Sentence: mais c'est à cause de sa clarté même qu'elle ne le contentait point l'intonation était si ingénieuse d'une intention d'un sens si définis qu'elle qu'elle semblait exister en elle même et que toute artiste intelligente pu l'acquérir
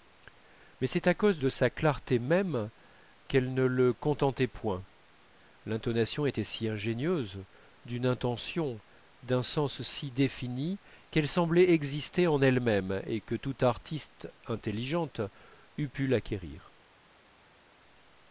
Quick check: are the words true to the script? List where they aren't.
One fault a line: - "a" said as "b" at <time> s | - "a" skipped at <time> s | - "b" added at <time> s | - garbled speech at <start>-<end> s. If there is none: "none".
- "qu'elle" skipped at 11.3 s
- "eût" added at 15.8 s